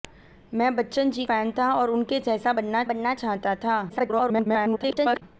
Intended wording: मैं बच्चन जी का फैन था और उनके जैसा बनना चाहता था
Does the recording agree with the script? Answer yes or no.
no